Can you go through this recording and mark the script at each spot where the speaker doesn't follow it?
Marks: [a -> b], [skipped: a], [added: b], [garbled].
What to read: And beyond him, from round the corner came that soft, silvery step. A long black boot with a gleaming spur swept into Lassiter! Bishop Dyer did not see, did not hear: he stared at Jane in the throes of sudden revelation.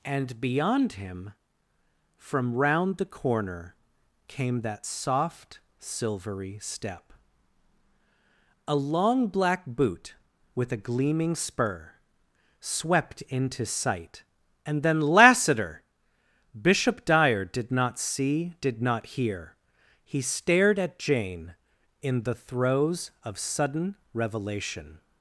And beyond him, from round the corner came that soft, silvery step. A long black boot with a gleaming spur swept into [added: sight and then] Lassiter! Bishop Dyer did not see, did not hear: he stared at Jane in the throes of sudden revelation.